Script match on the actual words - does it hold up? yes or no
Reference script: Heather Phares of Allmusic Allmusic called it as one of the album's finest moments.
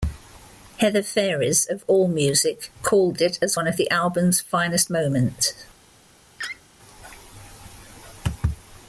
no